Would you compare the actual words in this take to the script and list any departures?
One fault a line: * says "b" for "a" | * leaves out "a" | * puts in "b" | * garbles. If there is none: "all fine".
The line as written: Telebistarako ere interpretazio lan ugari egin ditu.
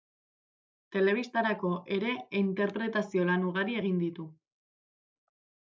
all fine